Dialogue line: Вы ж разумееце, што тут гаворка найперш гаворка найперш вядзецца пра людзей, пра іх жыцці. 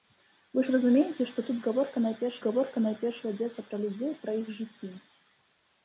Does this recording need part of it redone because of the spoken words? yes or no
no